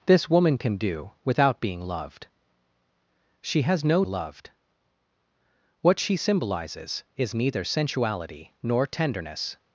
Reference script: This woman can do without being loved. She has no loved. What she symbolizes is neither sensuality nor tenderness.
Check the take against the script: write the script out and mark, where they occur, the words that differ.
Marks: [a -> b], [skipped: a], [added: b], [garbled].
This woman can do without being loved. She has no loved. What she symbolizes is neither sensuality nor tenderness.